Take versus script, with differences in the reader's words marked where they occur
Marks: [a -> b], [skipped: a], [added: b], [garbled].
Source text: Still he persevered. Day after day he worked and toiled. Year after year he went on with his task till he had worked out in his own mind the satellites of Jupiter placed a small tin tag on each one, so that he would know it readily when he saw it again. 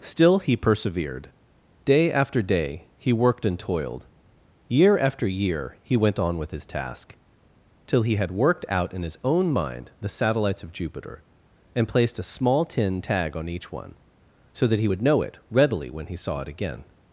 Still he persevered. Day after day he worked and toiled. Year after year he went on with his task till he had worked out in his own mind the satellites of Jupiter [added: and] placed a small tin tag on each one, so that he would know it readily when he saw it again.